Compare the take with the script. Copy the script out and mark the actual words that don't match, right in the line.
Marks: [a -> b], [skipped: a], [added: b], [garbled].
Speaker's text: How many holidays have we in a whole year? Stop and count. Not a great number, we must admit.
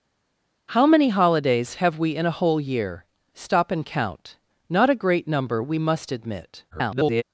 How many holidays have we in a whole year? Stop and count. Not a great number, we must admit. [garbled]